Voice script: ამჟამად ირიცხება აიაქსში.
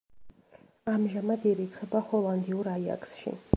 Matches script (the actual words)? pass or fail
fail